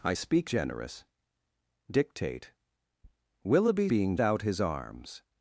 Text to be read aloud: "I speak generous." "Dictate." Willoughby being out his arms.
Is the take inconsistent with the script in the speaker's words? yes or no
no